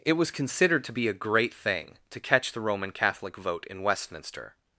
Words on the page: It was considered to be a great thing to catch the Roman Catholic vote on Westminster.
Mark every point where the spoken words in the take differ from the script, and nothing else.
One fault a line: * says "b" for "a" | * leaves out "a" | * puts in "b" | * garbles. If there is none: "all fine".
* says "in" for "on"